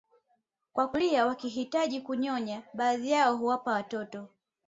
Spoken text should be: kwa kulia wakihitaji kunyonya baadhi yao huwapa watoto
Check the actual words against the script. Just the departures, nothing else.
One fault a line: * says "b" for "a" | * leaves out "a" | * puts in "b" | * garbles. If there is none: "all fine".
all fine